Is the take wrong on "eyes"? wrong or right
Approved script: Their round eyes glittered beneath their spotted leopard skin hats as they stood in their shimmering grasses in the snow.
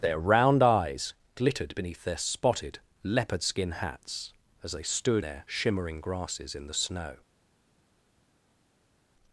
right